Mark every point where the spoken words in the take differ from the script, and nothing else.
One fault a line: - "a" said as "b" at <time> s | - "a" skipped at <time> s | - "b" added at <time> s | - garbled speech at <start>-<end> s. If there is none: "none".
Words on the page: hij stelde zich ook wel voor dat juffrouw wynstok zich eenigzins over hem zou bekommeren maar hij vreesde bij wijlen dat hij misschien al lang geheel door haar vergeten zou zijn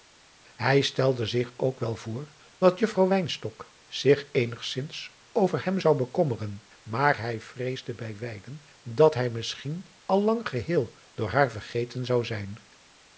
none